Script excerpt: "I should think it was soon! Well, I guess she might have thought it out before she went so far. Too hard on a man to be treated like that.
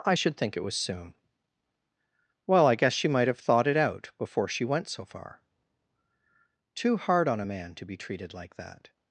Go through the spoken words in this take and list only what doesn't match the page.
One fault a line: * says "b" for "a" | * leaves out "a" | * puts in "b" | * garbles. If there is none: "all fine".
all fine